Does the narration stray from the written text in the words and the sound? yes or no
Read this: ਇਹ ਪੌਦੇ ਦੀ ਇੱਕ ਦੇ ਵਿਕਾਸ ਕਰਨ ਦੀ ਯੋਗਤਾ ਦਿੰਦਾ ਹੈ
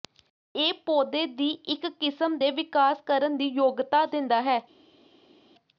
yes